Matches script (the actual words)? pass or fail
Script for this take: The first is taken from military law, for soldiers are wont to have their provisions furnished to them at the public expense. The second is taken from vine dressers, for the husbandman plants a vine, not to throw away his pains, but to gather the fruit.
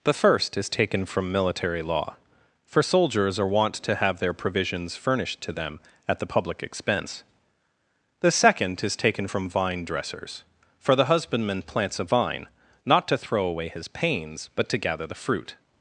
pass